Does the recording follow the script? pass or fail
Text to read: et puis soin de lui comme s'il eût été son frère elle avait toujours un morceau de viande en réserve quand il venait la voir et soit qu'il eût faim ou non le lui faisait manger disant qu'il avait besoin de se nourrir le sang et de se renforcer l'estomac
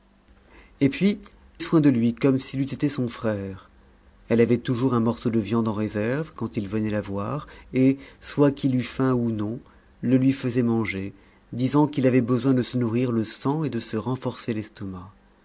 pass